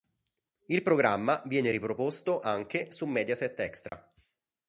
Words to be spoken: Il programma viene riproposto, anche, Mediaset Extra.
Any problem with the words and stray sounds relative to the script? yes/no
yes